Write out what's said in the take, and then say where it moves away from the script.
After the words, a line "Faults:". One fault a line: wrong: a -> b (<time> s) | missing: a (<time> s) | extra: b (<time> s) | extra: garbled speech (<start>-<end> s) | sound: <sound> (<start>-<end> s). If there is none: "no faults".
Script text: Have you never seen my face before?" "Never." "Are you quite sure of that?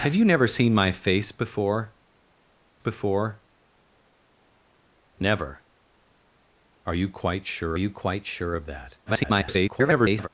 Have you never seen my face before before?" "Never." "Are you quite sure you quite sure of that? [garbled]
Faults:
extra: before (2.8 s)
extra: you quite sure (7.8 s)
extra: garbled speech (9.1-10.3 s)